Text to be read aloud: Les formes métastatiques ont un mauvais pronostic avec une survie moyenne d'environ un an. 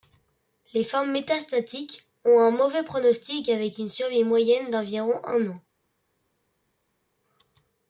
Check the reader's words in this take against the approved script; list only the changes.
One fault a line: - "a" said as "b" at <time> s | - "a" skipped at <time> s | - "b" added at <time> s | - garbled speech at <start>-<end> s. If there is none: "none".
none